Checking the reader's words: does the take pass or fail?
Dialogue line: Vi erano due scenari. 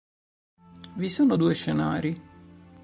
fail